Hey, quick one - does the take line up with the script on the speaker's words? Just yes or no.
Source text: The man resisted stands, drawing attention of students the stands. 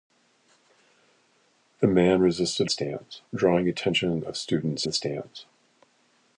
yes